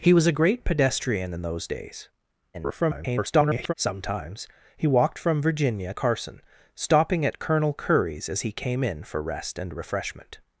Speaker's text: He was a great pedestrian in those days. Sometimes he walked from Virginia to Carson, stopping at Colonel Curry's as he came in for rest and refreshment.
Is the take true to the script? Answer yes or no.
no